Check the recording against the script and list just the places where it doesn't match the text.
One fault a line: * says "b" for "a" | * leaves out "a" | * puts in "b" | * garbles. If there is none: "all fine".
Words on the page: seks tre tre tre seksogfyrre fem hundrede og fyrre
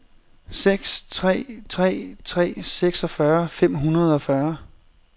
all fine